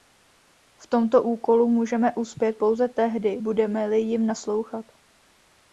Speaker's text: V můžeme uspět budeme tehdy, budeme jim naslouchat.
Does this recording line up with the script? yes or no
no